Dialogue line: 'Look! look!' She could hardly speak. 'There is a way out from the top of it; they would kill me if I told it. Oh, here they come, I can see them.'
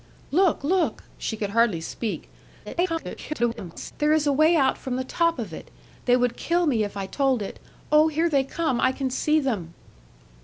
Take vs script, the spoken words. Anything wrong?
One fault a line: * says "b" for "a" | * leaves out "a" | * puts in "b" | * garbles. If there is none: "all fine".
* garbles